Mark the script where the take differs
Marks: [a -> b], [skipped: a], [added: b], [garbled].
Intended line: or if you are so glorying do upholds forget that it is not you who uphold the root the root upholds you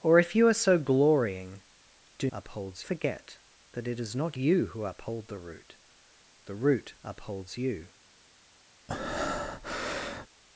or if you are so glorying do upholds forget that it is not you who uphold the root the root upholds you